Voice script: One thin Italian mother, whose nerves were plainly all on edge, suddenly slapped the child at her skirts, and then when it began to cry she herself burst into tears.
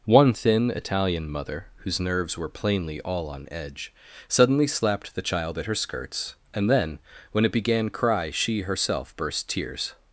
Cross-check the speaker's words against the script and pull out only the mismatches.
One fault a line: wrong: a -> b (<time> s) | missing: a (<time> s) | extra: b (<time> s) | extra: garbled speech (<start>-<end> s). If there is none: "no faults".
missing: to (7.9 s)
missing: into (9.5 s)